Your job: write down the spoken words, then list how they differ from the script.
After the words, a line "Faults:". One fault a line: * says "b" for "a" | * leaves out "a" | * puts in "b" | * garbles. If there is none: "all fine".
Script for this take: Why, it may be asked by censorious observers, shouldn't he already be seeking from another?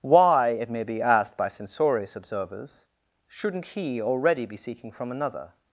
Why, it may be asked by censorious observers, shouldn't he already be seeking from another?
Faults:
all fine